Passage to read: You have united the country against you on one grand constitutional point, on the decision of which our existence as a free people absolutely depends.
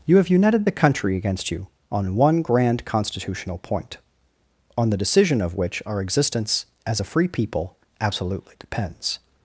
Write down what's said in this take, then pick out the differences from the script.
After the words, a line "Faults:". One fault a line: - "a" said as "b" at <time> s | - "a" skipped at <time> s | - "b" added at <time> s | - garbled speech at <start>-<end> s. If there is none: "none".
You have united the country against you on one grand constitutional point, on the decision of which our existence as a free people absolutely depends.
Faults:
none